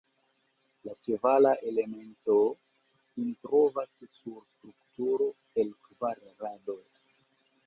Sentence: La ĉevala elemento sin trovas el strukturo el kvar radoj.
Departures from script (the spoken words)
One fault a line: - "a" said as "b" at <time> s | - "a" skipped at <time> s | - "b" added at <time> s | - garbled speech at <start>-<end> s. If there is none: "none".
- "el" said as "sur" at 4.2 s